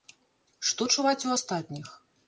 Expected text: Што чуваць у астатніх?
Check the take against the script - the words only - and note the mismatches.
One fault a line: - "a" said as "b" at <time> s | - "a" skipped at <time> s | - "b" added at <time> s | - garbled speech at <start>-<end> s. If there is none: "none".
none